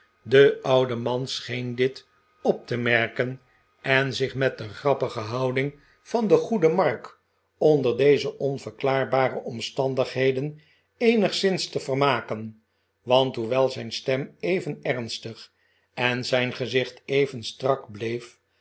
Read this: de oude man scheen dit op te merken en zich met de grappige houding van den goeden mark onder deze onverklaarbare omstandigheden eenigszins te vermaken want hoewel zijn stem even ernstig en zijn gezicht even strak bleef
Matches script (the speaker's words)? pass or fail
pass